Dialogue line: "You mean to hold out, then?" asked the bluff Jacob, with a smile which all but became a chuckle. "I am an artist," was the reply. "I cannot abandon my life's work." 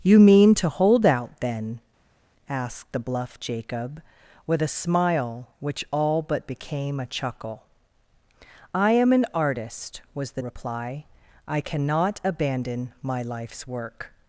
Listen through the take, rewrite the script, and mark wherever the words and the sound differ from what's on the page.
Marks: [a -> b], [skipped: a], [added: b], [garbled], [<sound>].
"You mean to hold out, then?" asked the bluff Jacob, with a smile which all but became a chuckle. "I am an artist," was the reply. "I cannot abandon my life's work."